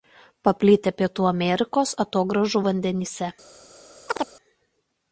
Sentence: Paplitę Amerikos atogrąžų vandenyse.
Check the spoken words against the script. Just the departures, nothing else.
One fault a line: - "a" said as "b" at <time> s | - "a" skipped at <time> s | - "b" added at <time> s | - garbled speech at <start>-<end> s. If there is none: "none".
- "Pietų" added at 1.0 s